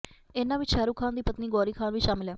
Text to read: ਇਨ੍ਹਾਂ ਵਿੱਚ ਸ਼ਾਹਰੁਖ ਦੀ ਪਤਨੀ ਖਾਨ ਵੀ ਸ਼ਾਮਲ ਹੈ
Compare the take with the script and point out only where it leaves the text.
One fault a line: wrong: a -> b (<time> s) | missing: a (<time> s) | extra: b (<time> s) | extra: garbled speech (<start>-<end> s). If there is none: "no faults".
extra: ਖਾਨ (1.0 s)
extra: ਗੌਰੀ (1.5 s)